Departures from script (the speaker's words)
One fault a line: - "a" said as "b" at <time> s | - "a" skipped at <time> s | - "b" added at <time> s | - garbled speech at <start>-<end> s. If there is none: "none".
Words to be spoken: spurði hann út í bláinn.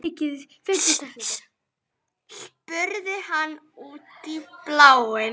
none